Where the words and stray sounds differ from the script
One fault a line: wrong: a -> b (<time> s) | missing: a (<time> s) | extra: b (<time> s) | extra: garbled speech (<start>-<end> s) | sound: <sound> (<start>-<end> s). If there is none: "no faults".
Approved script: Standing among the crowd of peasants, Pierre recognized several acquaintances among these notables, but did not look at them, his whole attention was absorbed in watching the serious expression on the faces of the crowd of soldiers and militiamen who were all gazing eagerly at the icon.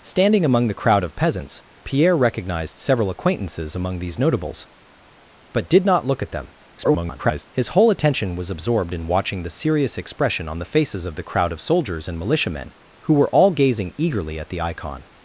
extra: garbled speech (6.8-7.5 s)